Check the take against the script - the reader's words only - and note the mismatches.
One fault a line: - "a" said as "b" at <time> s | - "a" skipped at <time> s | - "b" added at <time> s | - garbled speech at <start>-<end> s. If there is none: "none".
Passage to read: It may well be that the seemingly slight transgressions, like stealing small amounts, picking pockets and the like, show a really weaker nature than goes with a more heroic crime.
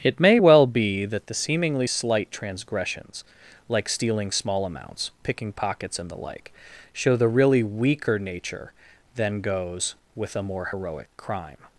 - "a" said as "the" at 7.2 s